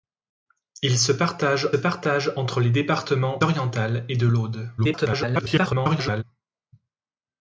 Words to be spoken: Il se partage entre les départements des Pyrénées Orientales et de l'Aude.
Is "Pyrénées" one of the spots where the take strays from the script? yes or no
yes